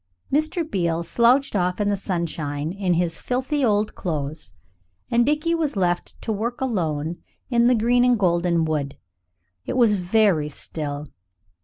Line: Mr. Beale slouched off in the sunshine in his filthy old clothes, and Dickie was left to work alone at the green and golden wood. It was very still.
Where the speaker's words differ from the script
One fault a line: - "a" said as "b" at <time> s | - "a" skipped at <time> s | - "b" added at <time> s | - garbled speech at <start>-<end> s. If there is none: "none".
- "at" said as "in" at 7.5 s